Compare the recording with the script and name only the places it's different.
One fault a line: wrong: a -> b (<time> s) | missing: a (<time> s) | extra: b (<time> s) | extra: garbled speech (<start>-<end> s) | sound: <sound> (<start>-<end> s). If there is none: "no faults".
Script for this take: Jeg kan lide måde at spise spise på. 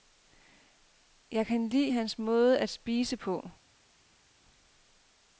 extra: hans (1.9 s)
missing: spise (3.2 s)